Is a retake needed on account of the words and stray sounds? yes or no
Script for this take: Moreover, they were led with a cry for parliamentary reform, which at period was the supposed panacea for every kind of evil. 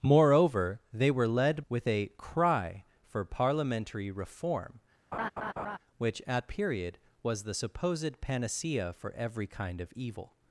yes